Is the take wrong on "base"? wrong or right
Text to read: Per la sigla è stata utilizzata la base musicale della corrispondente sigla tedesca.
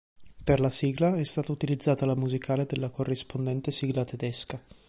wrong